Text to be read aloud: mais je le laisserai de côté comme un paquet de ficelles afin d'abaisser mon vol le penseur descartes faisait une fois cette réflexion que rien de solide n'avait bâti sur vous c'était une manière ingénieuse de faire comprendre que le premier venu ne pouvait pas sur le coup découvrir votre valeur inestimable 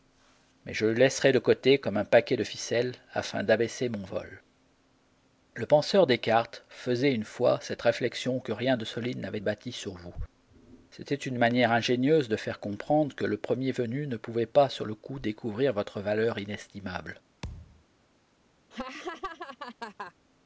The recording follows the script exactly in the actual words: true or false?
true